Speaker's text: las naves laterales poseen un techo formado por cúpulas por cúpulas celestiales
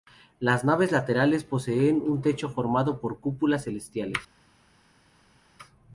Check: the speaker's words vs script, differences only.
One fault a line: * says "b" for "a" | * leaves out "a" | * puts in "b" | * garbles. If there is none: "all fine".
* leaves out "por cúpulas"